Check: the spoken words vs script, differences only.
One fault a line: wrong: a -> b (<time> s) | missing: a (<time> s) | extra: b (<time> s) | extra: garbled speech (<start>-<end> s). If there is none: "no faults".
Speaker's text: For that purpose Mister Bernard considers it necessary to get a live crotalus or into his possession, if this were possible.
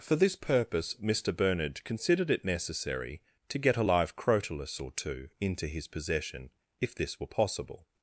wrong: that -> this (0.1 s)
wrong: considers -> considered (1.8 s)
extra: two (4.9 s)